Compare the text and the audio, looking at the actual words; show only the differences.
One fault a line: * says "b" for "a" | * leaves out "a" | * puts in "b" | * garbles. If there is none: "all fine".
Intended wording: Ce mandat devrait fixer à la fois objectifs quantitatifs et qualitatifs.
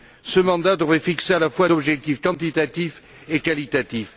all fine